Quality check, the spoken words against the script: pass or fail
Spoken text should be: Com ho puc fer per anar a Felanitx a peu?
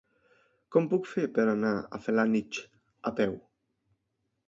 pass